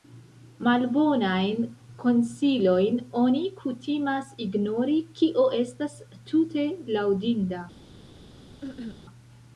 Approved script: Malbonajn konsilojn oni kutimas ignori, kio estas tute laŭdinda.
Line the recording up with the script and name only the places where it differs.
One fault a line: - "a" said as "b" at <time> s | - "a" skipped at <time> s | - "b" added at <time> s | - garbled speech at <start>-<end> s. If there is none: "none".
none